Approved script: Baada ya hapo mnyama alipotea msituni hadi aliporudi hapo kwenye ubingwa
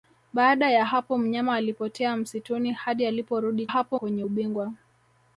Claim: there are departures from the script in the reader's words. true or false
false